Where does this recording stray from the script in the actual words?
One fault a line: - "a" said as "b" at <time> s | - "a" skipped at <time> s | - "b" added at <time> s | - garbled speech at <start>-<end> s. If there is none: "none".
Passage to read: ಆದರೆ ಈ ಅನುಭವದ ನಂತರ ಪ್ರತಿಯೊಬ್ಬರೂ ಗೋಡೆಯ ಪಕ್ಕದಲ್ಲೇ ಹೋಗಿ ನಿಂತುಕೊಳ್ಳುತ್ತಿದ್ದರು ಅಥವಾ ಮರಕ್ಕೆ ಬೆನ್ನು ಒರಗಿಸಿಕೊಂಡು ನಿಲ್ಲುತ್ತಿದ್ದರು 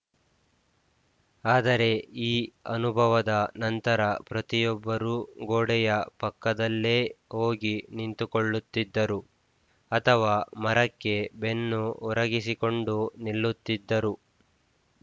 none